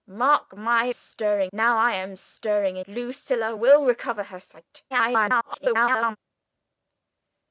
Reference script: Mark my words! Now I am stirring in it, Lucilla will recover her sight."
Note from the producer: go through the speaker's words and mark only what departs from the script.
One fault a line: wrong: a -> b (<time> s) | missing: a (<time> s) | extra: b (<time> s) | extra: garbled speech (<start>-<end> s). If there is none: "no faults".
wrong: words -> stirring (0.9 s)
missing: it (2.9 s)
extra: garbled speech (4.9-6.2 s)